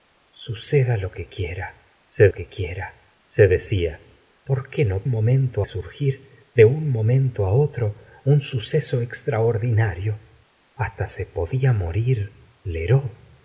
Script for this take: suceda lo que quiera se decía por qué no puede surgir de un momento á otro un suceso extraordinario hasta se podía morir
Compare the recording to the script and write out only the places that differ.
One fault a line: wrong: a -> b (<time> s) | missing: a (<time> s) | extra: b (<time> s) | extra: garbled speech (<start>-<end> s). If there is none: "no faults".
extra: que quiera se (2.3 s)
wrong: puede -> momento (5.1 s)